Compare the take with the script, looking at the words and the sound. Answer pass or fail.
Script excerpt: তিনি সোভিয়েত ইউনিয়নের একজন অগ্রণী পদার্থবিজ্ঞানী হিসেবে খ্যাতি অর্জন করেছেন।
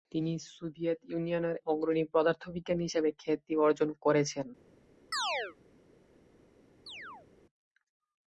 fail